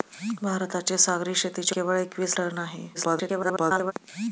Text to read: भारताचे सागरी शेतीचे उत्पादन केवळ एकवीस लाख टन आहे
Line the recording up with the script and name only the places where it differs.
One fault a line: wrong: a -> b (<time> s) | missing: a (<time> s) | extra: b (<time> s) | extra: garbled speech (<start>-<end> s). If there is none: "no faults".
missing: उत्पादन (1.8 s)
missing: लाख (2.4 s)
extra: garbled speech (2.9-3.9 s)